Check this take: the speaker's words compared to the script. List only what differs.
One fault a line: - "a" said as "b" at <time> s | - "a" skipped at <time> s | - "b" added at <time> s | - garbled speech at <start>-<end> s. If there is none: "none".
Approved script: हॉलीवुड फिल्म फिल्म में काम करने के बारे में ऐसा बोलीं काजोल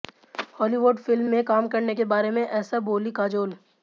- "फिल्म" skipped at 1.2 s